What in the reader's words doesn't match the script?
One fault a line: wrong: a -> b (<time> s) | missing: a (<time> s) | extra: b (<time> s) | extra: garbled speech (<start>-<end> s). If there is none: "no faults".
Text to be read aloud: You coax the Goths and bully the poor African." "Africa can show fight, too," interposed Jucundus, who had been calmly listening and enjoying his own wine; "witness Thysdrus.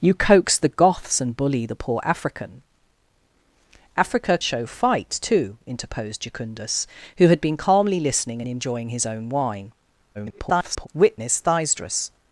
missing: can (4.4 s)
extra: garbled speech (10.1-10.9 s)